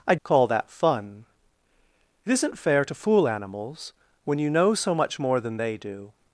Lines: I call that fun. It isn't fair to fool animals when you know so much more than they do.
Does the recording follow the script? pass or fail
pass